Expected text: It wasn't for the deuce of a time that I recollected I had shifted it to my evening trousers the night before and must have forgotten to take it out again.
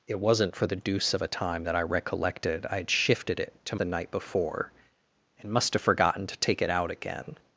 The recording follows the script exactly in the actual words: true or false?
false